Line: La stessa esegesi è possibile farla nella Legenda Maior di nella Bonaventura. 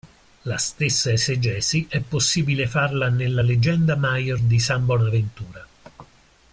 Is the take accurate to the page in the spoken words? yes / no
no